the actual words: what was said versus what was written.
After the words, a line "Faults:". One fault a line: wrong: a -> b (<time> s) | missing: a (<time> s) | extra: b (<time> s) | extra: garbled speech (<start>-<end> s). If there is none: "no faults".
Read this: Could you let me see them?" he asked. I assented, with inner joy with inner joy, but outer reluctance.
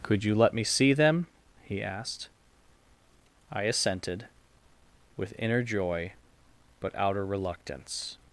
Could you let me see them?" he asked. I assented, with inner joy, but outer reluctance.
Faults:
missing: with inner joy (6.1 s)